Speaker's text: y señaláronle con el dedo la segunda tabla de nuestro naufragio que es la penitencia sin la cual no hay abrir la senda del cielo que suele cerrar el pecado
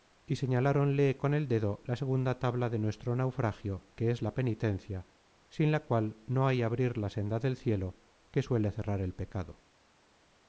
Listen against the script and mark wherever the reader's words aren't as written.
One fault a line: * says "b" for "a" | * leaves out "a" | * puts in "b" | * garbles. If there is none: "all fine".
all fine